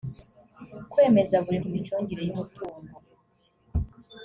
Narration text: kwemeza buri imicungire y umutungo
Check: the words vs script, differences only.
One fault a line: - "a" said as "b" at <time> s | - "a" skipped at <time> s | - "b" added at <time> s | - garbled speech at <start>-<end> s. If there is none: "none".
none